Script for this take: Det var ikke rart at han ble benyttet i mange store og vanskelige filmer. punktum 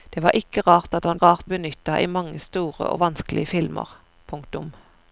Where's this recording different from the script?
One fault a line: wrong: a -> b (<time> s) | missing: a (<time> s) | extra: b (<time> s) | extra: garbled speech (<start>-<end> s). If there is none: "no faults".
wrong: ble -> rart (1.2 s)